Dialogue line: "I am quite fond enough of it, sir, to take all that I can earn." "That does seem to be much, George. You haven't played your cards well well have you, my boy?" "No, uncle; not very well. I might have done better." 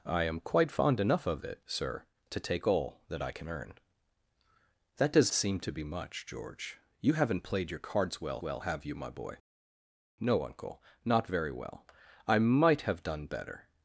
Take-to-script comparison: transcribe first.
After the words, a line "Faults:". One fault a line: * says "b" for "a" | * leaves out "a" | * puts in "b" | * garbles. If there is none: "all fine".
"I am quite fond enough of it, sir, to take all that I can earn." "That does seem to be much, George. You haven't played your cards well well have you, my boy?" "No, uncle; not very well. I might have done better."
Faults:
all fine